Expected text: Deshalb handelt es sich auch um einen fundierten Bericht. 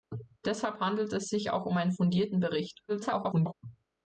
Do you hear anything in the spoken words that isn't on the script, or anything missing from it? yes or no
yes